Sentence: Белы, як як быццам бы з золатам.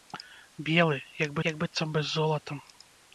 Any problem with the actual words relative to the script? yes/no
no